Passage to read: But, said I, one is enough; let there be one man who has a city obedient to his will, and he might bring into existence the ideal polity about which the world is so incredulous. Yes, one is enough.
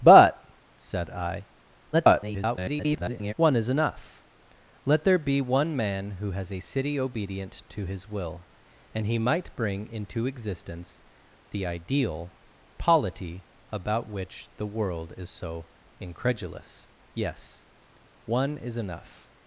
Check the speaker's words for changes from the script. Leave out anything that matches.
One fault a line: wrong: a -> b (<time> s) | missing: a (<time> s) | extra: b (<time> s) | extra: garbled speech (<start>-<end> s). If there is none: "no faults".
extra: garbled speech (1.9-3.3 s)